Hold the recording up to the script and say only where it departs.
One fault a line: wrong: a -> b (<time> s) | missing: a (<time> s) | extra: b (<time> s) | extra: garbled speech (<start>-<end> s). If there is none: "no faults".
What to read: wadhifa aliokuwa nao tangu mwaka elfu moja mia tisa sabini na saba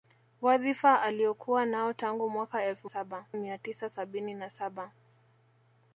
wrong: moja -> saba (2.8 s)